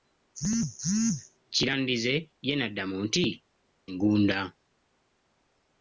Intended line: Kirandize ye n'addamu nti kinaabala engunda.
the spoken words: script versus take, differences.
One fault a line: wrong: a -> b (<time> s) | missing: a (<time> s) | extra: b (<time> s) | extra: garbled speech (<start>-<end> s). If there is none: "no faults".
missing: kinaabala (3.2 s)